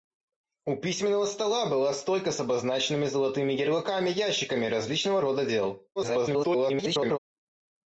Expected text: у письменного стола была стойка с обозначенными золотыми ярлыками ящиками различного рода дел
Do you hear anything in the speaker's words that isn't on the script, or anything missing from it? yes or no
yes